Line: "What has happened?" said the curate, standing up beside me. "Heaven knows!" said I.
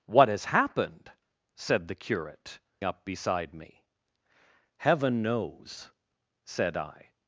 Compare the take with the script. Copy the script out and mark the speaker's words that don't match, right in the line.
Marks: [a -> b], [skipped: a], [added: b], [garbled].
"What has happened?" said the curate, [skipped: standing] up beside me. "Heaven knows!" said I.